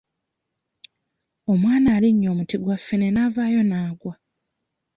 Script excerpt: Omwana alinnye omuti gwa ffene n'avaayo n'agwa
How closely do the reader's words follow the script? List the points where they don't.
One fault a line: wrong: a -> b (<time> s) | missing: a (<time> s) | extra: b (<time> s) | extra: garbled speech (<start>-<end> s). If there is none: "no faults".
no faults